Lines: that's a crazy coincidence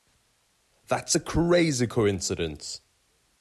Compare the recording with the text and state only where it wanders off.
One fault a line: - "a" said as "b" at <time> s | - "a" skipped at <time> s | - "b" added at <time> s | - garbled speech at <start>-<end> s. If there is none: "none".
none